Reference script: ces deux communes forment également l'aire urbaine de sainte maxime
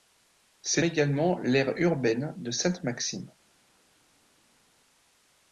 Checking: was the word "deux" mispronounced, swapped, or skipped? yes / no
yes